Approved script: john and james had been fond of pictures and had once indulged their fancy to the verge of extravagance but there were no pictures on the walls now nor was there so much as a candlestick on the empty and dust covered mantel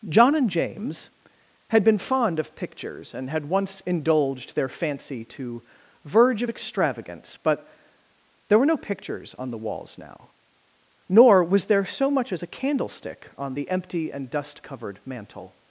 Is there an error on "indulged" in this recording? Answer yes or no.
no